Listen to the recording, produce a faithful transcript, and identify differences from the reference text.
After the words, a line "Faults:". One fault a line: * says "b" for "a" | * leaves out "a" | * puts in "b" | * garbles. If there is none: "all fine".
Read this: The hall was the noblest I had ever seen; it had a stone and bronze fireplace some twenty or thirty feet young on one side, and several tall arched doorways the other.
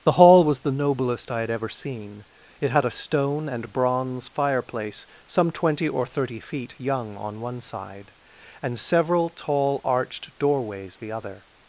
The hall was the noblest I had ever seen; it had a stone and bronze fireplace some twenty or thirty feet young on one side, and several tall arched doorways the other.
Faults:
all fine